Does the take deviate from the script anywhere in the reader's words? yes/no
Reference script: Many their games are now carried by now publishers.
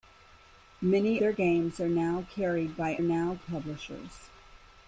no